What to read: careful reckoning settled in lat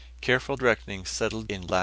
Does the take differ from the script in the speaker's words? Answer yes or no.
no